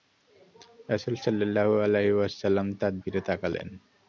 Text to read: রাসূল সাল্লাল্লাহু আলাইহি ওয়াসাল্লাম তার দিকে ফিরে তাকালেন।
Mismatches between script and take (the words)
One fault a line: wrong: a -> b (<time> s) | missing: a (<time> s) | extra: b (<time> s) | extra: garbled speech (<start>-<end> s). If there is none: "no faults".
missing: দিকে (2.9 s)